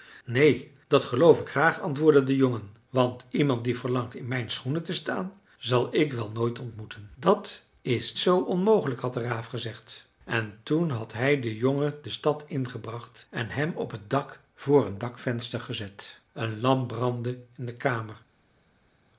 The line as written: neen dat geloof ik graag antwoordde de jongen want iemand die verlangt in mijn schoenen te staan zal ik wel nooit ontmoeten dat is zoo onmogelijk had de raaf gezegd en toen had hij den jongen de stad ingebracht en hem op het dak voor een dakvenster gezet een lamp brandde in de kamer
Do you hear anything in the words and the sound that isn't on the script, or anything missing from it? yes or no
no